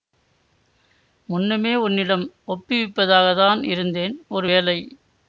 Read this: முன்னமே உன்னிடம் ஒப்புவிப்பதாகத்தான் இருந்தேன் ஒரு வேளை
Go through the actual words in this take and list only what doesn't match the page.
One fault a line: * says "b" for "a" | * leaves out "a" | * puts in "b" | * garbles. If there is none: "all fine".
all fine